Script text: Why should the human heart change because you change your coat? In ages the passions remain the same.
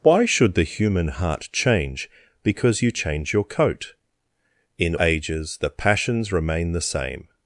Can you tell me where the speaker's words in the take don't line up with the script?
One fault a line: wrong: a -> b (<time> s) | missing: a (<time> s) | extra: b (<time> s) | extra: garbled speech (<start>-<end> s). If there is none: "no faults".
no faults